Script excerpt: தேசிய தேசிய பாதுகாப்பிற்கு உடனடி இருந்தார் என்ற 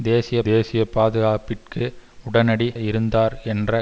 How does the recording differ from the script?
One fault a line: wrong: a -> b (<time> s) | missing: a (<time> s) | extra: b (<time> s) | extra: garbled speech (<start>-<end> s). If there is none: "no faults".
no faults